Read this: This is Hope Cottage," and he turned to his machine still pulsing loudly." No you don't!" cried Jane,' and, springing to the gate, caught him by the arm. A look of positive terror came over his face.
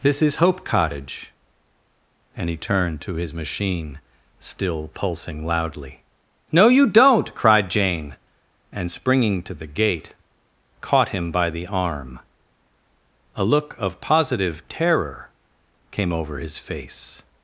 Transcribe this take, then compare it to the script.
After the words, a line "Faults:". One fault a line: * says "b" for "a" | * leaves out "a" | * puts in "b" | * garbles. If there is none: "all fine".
This is Hope Cottage," and he turned to his machine still pulsing loudly." No you don't!" cried Jane,' and, springing to the gate, caught him by the arm. A look of positive terror came over his face.
Faults:
all fine